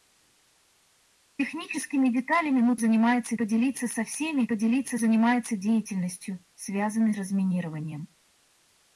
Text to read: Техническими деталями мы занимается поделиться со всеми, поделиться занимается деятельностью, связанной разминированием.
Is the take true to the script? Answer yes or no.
yes